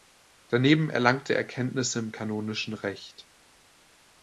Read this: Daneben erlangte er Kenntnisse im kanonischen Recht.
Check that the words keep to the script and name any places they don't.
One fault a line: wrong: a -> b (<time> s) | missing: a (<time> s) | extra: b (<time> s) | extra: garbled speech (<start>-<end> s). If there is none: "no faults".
no faults